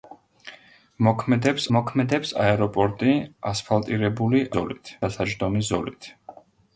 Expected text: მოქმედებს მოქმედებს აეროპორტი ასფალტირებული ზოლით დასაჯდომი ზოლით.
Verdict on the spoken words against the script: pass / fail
pass